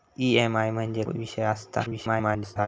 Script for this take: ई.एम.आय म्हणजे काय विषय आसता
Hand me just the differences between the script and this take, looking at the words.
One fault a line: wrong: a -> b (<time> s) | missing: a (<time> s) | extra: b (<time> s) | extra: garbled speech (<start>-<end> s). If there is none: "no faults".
missing: काय (1.0 s)
extra: garbled speech (1.8-2.7 s)